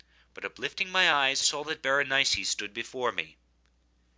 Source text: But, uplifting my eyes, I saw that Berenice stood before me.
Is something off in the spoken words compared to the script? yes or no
yes